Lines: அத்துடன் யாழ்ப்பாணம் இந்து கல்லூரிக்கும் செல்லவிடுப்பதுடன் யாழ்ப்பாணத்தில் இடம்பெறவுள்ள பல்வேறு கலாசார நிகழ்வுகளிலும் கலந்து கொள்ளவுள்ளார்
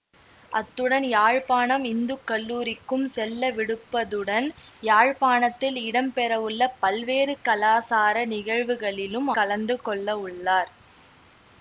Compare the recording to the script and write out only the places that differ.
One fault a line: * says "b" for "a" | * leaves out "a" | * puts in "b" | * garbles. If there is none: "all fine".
all fine